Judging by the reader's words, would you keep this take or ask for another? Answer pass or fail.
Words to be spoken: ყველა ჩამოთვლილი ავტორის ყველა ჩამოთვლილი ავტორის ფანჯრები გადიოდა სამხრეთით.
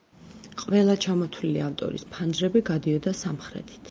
fail